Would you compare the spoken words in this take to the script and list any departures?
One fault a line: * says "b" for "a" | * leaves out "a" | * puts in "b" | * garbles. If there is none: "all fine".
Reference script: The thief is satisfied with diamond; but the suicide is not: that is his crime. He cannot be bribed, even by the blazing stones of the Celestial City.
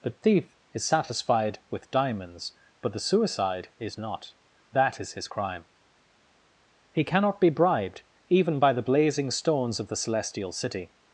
* says "diamonds" for "diamond"